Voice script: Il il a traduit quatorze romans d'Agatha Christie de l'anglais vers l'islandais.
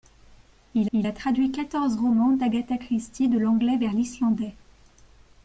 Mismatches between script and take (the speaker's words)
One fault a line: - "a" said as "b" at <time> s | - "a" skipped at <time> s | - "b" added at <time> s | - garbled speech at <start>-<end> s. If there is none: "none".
none